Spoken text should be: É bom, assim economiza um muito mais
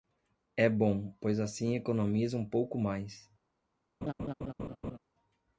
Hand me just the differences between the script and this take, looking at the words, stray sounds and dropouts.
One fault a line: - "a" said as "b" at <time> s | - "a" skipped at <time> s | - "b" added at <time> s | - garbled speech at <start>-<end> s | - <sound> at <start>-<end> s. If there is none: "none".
- "pois" added at 1.2 s
- "muito" said as "pouco" at 2.4 s
- laugh at 4.0-5.0 s